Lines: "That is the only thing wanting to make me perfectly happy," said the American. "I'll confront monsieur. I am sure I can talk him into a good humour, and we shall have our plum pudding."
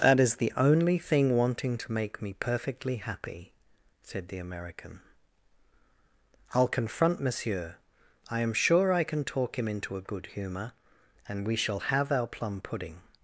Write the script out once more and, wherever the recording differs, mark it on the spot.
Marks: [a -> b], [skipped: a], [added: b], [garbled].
"That is the only thing wanting to make me perfectly happy," said the American. "I'll confront monsieur. I am sure I can talk him into a good humour, and we shall have our plum pudding."